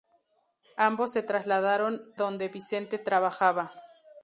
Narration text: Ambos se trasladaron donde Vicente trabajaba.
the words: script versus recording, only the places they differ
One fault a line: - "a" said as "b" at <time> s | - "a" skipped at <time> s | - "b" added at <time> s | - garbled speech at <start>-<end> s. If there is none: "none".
none